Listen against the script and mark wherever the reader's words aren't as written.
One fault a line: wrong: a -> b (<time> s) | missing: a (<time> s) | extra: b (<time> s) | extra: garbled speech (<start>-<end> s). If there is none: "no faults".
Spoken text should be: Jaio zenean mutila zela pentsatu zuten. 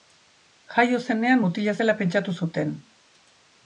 no faults